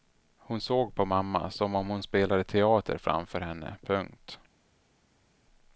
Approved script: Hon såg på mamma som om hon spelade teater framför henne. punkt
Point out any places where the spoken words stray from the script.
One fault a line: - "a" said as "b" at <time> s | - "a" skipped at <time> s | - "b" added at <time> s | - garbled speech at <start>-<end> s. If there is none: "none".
none